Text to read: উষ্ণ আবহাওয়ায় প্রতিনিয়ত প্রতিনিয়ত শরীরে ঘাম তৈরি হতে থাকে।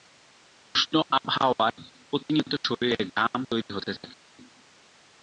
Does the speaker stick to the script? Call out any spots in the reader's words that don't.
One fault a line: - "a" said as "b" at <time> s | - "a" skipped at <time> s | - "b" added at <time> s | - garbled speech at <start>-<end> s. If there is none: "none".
- "প্রতিনিয়ত" skipped at 2.5 s